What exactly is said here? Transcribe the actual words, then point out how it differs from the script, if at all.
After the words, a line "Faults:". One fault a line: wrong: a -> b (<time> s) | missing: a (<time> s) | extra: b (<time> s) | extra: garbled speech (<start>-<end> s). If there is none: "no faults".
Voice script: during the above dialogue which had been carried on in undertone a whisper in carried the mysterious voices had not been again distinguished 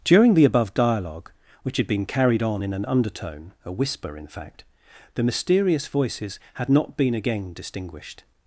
during the above dialogue which had been carried on in an undertone a whisper in fact the mysterious voices had not been again distinguished
Faults:
extra: an (2.7 s)
wrong: carried -> fact (4.3 s)